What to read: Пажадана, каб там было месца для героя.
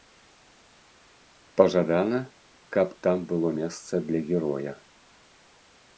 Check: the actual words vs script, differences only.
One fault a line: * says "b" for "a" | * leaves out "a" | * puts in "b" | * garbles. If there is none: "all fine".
all fine